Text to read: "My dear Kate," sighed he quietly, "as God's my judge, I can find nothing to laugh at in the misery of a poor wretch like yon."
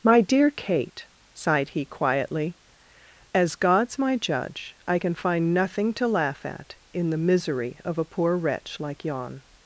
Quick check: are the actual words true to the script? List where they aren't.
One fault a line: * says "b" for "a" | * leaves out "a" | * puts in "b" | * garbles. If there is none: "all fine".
all fine